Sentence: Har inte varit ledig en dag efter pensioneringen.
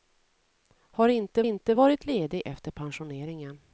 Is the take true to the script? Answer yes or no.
no